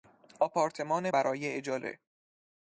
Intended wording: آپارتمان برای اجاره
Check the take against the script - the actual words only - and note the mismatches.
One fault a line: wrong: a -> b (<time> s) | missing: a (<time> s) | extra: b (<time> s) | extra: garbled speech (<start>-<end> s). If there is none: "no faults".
no faults